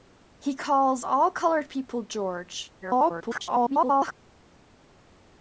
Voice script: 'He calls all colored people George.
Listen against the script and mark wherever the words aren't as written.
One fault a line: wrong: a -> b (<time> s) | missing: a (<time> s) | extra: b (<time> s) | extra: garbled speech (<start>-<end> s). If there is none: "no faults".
extra: garbled speech (2.8-4.1 s)